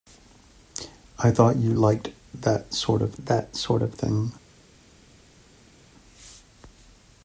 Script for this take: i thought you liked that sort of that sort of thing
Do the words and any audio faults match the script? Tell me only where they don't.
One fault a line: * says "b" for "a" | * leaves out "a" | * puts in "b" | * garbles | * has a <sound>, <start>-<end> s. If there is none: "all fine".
all fine